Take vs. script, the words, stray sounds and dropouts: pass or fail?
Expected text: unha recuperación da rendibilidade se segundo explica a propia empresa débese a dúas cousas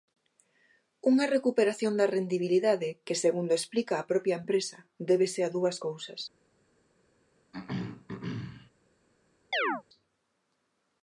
fail